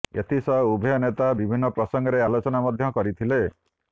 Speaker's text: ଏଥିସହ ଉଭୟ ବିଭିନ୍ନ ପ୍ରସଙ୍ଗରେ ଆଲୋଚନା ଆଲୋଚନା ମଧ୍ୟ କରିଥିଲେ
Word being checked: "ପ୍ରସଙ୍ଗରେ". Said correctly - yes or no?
yes